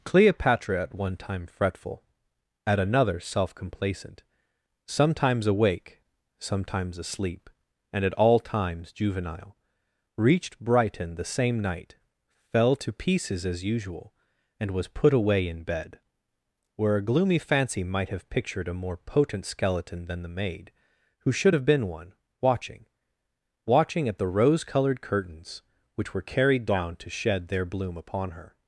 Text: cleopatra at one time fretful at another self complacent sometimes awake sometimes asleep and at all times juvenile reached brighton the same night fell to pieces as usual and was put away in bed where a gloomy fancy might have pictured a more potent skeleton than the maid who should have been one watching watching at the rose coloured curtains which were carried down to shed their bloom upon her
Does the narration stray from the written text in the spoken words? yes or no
no